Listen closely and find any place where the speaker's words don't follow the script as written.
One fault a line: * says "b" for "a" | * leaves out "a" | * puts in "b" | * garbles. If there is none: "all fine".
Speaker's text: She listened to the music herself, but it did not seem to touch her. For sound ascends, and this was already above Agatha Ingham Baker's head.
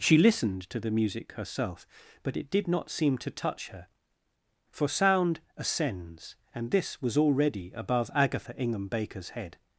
all fine